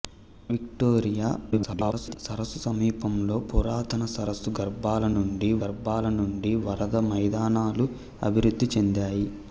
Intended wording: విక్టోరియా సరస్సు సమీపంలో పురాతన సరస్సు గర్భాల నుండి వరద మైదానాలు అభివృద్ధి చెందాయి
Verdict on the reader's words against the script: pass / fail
fail